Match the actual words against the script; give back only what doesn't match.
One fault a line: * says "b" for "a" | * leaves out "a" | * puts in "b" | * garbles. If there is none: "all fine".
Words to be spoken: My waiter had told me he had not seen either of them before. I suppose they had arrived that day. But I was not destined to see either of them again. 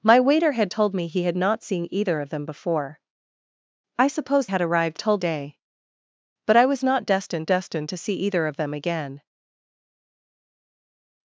* leaves out "they"
* says "told" for "that"
* puts in "destined"